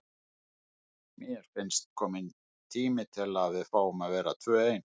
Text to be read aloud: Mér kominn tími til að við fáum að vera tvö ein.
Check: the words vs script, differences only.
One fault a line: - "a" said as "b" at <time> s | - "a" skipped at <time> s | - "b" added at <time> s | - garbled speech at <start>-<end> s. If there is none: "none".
- "finnst" added at 1.5 s